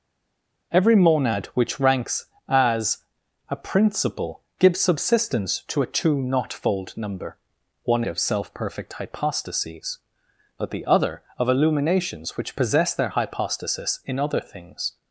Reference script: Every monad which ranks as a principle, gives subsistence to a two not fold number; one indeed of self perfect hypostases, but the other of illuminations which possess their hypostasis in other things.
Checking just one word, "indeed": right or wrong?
wrong